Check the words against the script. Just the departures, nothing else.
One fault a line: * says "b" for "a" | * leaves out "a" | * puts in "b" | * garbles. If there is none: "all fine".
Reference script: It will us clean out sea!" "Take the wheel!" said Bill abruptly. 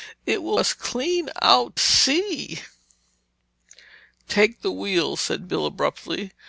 all fine